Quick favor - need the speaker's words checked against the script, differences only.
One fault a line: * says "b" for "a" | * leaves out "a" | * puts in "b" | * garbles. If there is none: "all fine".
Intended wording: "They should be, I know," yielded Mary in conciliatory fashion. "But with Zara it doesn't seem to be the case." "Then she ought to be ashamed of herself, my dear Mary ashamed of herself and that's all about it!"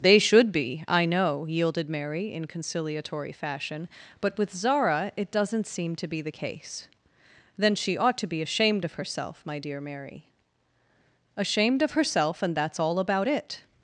all fine